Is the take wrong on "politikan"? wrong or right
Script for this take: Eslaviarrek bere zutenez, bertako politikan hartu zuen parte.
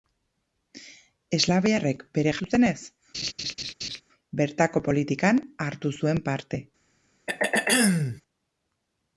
right